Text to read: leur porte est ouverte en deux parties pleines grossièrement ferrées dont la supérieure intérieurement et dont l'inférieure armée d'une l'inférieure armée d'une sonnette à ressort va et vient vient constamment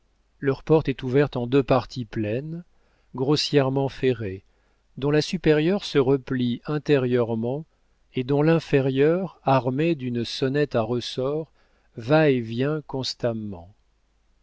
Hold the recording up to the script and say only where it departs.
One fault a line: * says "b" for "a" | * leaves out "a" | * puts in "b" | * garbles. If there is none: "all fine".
* puts in "se replie"
* leaves out "l'inférieure armée d'une"
* leaves out "vient"